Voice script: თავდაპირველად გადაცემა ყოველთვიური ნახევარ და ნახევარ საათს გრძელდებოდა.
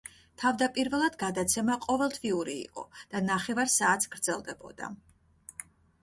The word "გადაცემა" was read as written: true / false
true